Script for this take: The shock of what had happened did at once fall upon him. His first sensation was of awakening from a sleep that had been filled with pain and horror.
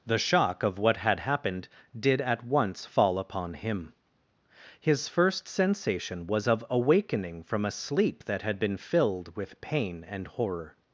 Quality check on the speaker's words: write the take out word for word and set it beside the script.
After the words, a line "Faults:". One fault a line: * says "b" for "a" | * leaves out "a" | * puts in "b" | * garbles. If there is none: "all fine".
The shock of what had happened did at once fall upon him. His first sensation was of awakening from a sleep that had been filled with pain and horror.
Faults:
all fine